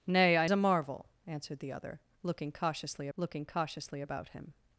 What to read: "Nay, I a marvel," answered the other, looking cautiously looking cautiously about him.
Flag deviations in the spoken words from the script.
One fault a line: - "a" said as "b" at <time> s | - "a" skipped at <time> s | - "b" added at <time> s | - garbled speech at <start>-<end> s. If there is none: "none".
none